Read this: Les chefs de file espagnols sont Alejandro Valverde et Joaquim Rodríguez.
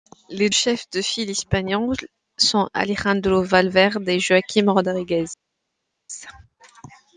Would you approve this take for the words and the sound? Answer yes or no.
yes